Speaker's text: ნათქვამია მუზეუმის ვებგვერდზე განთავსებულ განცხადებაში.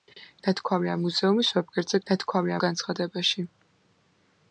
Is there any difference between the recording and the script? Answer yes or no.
yes